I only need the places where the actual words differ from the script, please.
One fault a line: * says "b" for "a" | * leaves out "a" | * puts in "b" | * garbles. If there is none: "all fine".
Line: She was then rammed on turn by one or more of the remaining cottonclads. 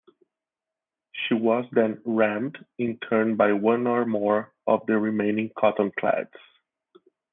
* says "in" for "on"